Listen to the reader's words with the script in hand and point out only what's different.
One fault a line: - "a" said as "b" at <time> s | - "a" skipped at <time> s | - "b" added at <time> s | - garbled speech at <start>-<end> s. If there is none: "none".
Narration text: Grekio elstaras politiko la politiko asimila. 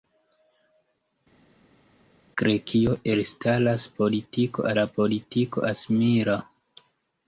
none